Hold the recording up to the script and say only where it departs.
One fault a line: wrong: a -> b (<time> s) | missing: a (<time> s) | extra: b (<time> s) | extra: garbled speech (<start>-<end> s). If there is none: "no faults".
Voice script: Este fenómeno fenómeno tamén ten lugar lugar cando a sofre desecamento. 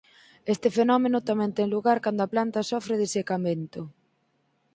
missing: fenómeno (1.2 s)
missing: lugar (2.0 s)
extra: planta (2.3 s)